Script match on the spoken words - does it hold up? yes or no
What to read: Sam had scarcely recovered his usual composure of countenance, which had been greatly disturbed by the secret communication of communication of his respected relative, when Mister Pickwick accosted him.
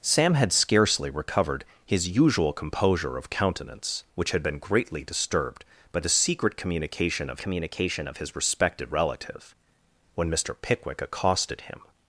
yes